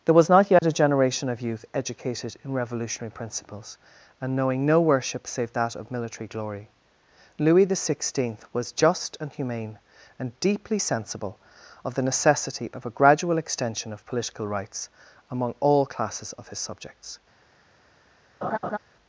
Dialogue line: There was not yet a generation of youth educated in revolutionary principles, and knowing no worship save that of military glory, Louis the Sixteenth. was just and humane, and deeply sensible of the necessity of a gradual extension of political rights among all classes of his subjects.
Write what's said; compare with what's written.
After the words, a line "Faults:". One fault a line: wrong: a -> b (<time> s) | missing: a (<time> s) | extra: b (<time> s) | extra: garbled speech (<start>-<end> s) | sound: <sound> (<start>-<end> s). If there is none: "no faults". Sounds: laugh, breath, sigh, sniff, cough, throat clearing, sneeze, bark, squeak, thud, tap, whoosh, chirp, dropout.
There was not yet a generation of youth educated in revolutionary principles, and knowing no worship save that of military glory, Louis the Sixteenth. was just and humane, and deeply sensible of the necessity of a gradual extension of political rights among all classes of his subjects.
Faults:
sound: dropout (0.6-0.6 s)
sound: laugh (18.4-18.8 s)